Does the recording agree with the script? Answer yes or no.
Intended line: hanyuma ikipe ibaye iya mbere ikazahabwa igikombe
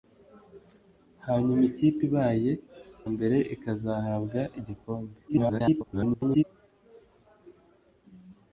no